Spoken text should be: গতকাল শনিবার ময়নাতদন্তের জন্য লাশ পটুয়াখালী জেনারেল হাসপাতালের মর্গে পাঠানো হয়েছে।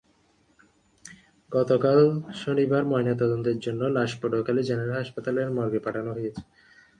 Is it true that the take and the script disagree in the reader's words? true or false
false